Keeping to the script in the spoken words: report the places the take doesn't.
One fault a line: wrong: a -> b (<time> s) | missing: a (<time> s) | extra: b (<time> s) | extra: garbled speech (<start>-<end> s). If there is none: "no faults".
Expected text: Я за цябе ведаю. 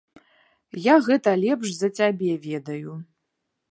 extra: гэта лепш (1.1 s)